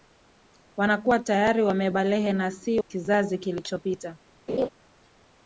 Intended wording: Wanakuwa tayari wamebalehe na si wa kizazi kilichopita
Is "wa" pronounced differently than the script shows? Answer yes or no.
yes